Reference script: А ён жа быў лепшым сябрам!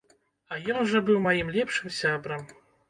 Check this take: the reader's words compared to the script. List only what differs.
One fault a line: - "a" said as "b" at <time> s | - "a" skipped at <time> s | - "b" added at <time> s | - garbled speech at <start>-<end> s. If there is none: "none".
- "маім" added at 1.3 s